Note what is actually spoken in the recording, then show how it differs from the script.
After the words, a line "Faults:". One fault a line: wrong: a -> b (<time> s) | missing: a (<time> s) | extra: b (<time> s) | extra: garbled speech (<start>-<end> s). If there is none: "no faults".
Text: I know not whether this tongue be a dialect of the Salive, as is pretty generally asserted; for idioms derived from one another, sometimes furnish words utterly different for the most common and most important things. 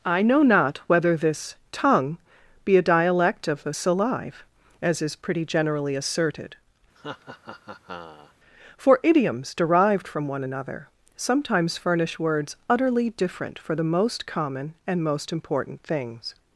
I know not whether this tongue be a dialect of the Salive, as is pretty generally asserted; for idioms derived from one another, sometimes furnish words utterly different for the most common and most important things.
Faults:
no faults